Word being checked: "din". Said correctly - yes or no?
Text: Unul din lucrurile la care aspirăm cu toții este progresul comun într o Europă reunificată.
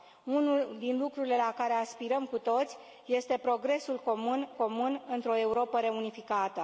yes